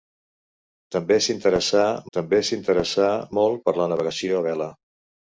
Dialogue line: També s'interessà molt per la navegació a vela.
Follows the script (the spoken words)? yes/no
no